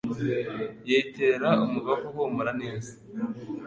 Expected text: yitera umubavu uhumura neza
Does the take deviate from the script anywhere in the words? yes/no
no